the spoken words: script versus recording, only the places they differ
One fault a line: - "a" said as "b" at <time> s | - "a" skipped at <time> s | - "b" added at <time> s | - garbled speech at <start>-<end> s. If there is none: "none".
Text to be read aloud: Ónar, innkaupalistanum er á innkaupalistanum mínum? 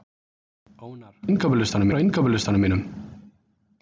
none